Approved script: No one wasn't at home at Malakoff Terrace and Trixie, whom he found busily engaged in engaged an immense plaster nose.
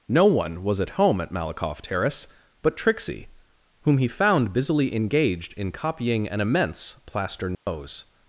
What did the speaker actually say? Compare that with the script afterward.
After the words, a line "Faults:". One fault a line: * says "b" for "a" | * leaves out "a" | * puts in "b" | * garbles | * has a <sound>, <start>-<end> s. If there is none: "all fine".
No one was at home at Malakoff Terrace but Trixie, whom he found busily engaged in copying an immense plaster nose.
Faults:
* says "was" for "wasn't"
* says "but" for "and"
* says "copying" for "engaged"
* has a dropout, 7.5-7.7 s